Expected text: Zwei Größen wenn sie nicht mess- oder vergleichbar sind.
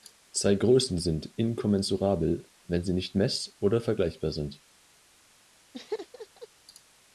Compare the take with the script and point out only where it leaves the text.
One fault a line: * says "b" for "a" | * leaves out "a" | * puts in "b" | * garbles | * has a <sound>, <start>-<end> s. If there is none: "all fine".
* puts in "sind inkommensurabel"
* has a laugh, 5.7-6.5 s